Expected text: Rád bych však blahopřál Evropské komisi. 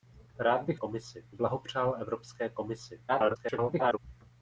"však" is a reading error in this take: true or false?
true